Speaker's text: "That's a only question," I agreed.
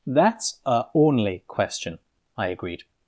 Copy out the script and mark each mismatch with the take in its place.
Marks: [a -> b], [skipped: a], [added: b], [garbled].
"That's a only question," I agreed.